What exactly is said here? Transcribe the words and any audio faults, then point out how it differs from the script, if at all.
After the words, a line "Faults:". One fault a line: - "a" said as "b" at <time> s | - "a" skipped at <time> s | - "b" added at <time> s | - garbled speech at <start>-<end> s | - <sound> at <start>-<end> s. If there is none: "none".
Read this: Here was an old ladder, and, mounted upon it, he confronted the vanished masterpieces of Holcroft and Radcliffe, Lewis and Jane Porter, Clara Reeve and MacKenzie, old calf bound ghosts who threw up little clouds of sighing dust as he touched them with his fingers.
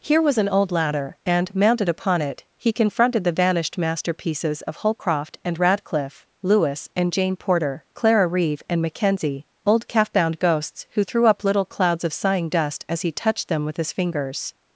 Here was an old ladder, and, mounted upon it, he confronted the vanished masterpieces of Holcroft and Radcliffe, Lewis and Jane Porter, Clara Reeve and MacKenzie, old calf bound ghosts who threw up little clouds of sighing dust as he touched them with his fingers.
Faults:
none